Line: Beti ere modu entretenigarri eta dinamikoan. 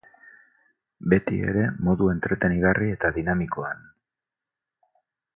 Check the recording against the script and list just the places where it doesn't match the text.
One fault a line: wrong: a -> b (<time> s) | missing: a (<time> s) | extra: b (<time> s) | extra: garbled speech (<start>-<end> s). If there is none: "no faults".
no faults